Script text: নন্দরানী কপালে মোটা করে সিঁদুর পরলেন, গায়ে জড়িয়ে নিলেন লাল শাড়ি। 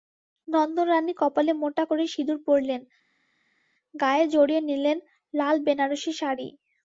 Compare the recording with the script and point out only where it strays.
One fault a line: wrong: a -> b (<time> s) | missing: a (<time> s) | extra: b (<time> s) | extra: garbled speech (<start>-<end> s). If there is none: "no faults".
extra: বেনারসি (5.6 s)